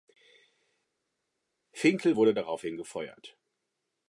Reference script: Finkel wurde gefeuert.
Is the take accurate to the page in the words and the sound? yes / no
no